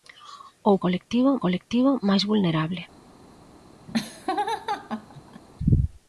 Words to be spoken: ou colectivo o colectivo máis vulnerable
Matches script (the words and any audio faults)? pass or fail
fail